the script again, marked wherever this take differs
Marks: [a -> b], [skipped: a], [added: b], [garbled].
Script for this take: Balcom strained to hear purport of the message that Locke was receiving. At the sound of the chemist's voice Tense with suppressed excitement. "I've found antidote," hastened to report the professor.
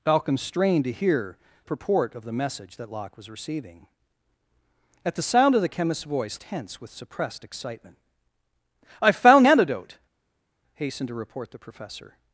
Balcom strained to hear purport of the message that Locke was receiving. At the sound of the chemist's voice Tense with suppressed excitement. "I've found antidote," hastened to report the professor.